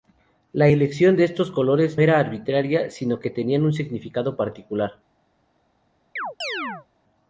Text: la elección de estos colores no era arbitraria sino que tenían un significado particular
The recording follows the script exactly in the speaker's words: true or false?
false